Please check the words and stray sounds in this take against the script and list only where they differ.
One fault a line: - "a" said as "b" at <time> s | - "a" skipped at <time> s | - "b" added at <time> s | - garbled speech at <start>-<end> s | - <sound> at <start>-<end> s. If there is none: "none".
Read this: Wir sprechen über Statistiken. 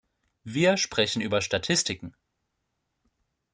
none